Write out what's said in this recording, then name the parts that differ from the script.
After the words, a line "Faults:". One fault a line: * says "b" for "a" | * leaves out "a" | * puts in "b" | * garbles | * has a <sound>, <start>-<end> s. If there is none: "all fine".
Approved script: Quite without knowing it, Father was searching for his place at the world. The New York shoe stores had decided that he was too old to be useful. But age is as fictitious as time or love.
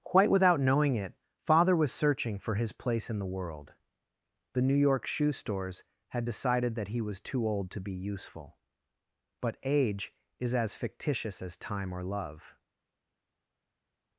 Quite without knowing it, Father was searching for his place in the world. The New York shoe stores had decided that he was too old to be useful. But age is as fictitious as time or love.
Faults:
* says "in" for "at"